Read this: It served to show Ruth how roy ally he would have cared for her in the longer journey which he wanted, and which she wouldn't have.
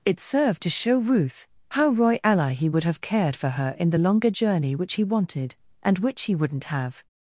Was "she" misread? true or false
true